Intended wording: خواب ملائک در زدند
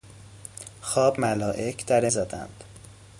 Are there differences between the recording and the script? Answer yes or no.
no